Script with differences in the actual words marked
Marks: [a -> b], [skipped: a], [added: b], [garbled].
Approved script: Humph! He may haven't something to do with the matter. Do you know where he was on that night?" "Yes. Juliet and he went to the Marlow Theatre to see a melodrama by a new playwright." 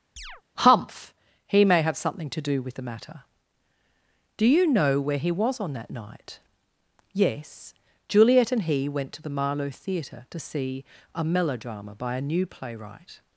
Humph! He may [haven't -> have] something to do with the matter. Do you know where he was on that night?" "Yes. Juliet and he went to the Marlow Theatre to see a melodrama by a new playwright."